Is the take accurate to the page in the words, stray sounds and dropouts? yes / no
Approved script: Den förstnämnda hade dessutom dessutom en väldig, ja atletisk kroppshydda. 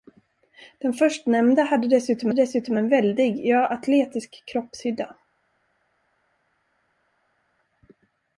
yes